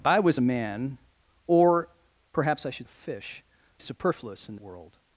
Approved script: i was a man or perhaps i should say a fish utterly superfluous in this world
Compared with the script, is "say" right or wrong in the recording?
wrong